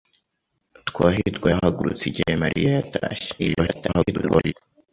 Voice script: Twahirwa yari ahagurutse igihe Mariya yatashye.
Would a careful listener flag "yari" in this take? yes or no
yes